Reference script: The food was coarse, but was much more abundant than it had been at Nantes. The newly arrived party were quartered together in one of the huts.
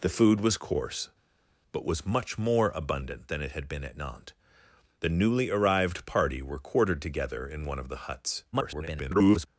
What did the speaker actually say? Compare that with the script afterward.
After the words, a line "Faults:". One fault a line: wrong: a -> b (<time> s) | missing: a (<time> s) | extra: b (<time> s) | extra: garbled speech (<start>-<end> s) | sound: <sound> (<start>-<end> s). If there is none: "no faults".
The food was coarse, but was much more abundant than it had been at Nantes. The newly arrived party were quartered together in one of the huts. [garbled]
Faults:
extra: garbled speech (8.5-9.5 s)